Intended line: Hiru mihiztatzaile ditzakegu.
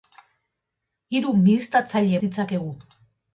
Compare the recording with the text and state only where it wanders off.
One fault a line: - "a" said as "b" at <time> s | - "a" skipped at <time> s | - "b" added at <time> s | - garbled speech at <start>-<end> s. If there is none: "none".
none